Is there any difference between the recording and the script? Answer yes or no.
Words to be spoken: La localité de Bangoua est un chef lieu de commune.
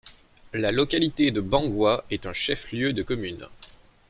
no